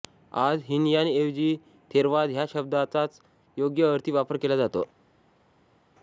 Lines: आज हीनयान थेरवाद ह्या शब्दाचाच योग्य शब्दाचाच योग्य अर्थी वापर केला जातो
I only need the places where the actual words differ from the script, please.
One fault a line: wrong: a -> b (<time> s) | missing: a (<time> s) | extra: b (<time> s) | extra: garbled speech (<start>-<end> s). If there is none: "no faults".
extra: ऐवजी (1.1 s)
missing: शब्दाचाच योग्य (3.9 s)